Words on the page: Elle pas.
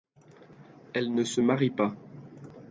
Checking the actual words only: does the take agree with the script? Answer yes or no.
no